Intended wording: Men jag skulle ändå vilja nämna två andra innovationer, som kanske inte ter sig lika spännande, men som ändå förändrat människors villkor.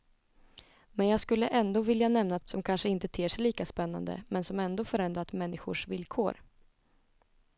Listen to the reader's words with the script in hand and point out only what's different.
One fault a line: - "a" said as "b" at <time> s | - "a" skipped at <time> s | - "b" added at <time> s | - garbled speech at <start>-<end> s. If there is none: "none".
- "två andra innovationer" skipped at 2.4 s